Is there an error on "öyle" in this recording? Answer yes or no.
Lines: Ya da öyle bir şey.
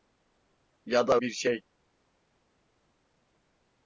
yes